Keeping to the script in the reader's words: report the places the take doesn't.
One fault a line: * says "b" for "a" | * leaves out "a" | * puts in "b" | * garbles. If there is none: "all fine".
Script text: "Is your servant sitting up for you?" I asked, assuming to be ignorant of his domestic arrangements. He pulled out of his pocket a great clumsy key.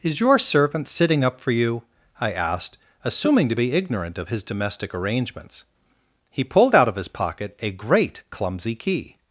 all fine